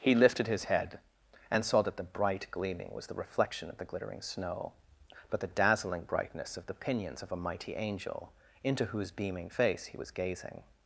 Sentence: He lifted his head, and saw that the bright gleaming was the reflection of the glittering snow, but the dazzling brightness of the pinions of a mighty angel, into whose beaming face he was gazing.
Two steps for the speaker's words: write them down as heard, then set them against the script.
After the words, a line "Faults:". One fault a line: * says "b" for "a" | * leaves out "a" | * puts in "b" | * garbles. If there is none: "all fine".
He lifted his head, and saw that the bright gleaming was the reflection of the glittering snow, but the dazzling brightness of the pinions of a mighty angel, into whose beaming face he was gazing.
Faults:
all fine